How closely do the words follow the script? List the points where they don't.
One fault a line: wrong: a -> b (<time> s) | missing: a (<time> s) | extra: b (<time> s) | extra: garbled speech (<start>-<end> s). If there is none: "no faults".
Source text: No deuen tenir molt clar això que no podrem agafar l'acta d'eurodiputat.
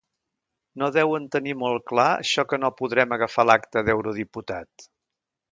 no faults